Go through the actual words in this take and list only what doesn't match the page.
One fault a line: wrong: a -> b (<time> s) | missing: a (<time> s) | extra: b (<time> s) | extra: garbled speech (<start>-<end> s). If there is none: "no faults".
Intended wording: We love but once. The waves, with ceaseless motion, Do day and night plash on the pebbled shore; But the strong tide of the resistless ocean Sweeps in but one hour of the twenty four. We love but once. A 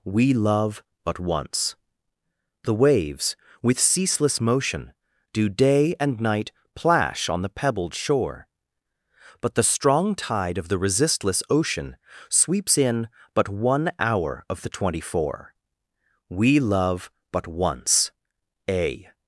no faults